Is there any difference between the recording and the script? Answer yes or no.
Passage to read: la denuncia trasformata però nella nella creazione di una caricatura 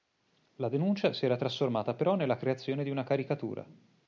yes